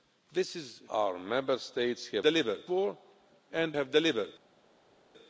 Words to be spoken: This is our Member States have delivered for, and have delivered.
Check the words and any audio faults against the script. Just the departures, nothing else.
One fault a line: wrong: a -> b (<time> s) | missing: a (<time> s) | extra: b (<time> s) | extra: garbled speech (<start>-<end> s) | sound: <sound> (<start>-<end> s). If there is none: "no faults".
no faults